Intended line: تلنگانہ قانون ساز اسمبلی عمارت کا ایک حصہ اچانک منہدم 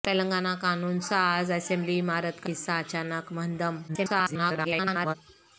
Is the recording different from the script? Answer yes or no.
yes